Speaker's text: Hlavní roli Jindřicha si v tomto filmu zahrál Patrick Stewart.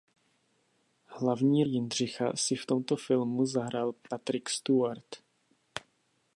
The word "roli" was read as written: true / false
false